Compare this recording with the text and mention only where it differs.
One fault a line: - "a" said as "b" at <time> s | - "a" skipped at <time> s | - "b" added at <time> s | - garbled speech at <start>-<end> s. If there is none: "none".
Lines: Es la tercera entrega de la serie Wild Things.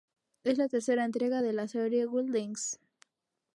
none